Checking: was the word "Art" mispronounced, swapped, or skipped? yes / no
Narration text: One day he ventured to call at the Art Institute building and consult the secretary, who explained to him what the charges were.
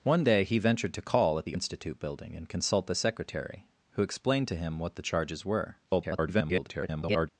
yes